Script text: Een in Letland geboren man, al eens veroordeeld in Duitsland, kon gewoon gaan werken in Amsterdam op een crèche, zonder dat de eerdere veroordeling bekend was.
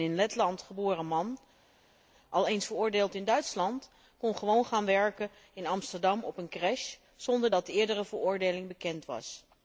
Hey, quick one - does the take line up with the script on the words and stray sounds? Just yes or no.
yes